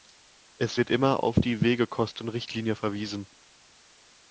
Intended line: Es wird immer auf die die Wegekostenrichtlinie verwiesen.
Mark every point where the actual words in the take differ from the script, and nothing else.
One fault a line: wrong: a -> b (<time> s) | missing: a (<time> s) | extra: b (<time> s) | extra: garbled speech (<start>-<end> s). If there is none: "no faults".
missing: die (1.6 s)